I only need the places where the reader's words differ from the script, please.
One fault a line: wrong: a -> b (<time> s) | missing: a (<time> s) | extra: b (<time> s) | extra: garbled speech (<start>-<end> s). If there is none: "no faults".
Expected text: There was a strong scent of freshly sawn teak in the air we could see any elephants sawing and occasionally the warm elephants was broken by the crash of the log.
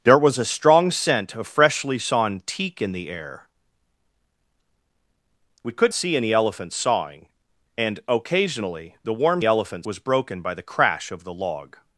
no faults